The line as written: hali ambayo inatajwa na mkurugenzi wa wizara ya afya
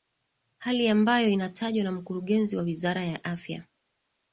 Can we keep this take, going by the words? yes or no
yes